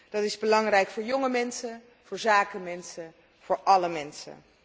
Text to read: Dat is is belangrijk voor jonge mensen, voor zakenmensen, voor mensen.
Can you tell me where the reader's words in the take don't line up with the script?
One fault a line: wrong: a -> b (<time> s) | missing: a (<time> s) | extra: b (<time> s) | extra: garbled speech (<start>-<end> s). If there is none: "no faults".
missing: is (0.4 s)
extra: alle (3.6 s)